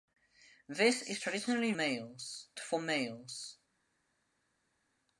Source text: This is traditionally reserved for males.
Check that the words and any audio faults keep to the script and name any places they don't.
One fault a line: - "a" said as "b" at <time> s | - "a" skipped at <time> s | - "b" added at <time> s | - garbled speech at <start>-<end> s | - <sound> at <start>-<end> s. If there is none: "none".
- "reserved" said as "males" at 1.7 s